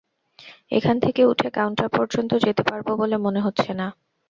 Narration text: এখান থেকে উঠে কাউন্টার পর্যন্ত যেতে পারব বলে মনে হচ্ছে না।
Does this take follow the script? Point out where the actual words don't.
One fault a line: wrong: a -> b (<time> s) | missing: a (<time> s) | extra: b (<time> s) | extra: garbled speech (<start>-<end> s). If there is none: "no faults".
no faults